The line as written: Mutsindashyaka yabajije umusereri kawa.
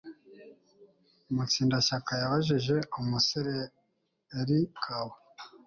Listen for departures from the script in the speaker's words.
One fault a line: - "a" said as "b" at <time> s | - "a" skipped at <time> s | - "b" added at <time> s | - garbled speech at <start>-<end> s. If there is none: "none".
none